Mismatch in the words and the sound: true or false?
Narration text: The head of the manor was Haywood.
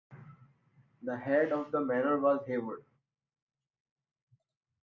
false